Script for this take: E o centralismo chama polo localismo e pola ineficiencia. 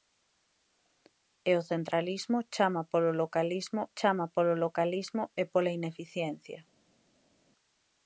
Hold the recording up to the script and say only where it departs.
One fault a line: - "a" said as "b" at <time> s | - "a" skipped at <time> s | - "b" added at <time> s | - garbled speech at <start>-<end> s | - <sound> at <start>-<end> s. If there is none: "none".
- "chama polo localismo" added at 4.0 s